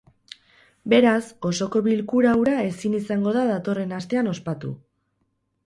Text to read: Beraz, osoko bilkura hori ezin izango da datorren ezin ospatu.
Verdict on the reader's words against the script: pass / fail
fail